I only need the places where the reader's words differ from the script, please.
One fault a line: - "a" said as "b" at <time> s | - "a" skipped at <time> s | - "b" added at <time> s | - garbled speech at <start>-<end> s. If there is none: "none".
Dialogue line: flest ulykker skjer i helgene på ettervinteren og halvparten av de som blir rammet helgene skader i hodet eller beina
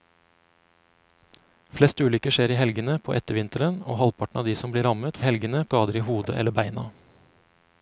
none